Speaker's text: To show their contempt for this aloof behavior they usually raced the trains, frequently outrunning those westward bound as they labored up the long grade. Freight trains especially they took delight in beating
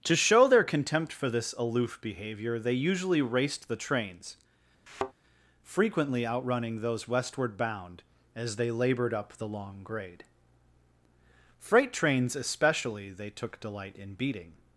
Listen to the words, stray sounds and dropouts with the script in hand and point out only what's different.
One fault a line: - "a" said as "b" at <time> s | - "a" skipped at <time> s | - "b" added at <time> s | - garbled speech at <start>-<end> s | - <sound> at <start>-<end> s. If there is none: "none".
- thud at 4.9-5.1 s